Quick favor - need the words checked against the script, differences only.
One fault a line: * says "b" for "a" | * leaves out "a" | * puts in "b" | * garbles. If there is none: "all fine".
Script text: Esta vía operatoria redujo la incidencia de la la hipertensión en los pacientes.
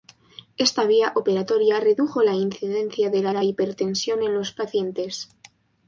all fine